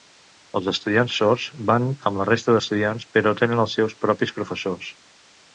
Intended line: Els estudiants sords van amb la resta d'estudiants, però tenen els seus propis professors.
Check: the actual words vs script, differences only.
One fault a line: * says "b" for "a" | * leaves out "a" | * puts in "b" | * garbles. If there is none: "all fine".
all fine